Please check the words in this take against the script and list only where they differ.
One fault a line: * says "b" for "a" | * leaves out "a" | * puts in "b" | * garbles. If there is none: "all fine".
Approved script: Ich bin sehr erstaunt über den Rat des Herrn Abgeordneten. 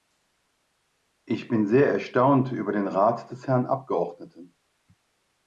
all fine